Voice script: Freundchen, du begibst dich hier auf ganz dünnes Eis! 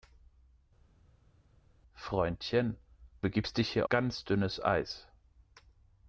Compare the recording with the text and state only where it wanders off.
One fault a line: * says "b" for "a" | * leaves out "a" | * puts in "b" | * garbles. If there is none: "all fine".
* leaves out "du"
* leaves out "auf"